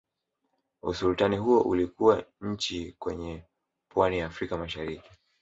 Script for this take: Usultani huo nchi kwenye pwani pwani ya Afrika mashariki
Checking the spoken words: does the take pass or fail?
fail